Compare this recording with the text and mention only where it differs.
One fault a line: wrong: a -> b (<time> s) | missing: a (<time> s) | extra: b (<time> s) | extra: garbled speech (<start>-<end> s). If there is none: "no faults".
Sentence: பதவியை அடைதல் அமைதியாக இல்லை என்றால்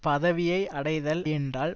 missing: அமைதியாக இல்லை (1.2 s)